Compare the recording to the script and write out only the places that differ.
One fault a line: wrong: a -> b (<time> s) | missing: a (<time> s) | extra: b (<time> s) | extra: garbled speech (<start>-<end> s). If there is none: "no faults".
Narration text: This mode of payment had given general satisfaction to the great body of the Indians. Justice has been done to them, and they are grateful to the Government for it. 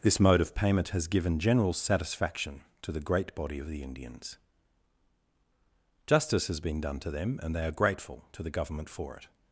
wrong: had -> has (0.9 s)